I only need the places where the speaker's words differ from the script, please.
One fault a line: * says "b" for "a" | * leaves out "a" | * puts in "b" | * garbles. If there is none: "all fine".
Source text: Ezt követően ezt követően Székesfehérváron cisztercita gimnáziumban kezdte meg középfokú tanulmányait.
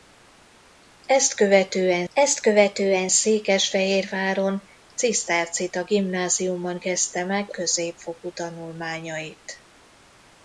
all fine